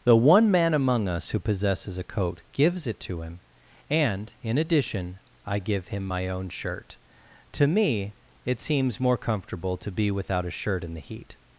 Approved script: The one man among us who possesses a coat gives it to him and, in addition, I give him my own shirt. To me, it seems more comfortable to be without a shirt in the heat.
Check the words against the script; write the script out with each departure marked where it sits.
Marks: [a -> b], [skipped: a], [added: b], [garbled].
The one man among us who possesses a coat gives it to him and, in addition, I give him my own shirt. To me, it seems more comfortable to be without a shirt in the heat.